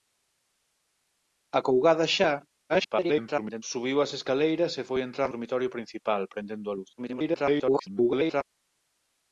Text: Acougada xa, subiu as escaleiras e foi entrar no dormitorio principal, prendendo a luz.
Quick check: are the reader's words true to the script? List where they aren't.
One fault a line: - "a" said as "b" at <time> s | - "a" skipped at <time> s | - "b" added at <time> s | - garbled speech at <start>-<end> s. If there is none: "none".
- garbled speech at 2.7-3.6 s
- "no" skipped at 5.3 s
- garbled speech at 7.0-8.4 s